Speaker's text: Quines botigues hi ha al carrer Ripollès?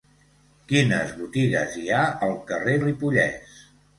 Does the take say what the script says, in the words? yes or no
yes